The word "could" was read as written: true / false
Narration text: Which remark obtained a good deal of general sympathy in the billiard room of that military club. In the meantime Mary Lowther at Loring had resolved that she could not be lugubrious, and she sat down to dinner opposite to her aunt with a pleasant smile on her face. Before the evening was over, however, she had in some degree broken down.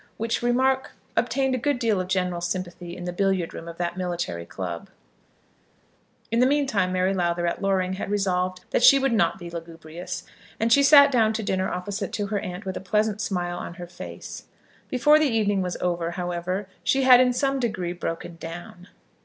false